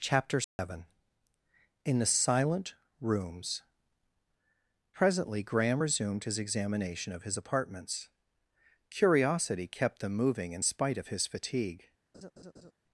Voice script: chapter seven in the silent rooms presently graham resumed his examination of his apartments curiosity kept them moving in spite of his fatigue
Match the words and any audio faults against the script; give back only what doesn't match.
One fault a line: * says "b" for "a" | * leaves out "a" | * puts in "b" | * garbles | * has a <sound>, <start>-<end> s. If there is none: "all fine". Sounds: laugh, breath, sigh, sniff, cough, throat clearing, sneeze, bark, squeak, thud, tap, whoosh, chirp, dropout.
* has a dropout, 0.4-0.6 s
* has a laugh, 12.1-12.7 s